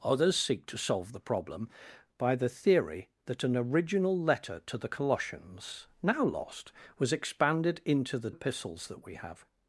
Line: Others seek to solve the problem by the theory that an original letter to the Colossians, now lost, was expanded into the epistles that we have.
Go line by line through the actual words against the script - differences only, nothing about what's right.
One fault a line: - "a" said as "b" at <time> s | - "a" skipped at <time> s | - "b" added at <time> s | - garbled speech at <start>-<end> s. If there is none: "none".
none